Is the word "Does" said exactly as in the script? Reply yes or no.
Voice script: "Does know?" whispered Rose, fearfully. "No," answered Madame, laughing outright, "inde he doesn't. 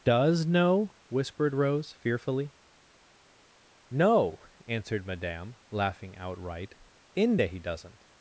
yes